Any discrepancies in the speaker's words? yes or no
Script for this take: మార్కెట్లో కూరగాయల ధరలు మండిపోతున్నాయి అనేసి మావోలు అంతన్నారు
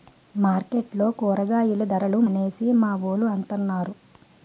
yes